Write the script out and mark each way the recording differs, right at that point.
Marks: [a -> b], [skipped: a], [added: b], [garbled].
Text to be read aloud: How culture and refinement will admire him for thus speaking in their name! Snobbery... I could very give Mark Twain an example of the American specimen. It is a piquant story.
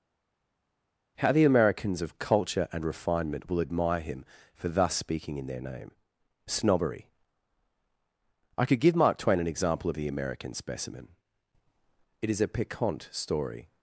How [added: the Americans of] culture and refinement will admire him for thus speaking in their name! Snobbery... I could [skipped: very] give Mark Twain an example of the American specimen. It is a piquant story.